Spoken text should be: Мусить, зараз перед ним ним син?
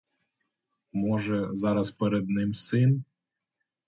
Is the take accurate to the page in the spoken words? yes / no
no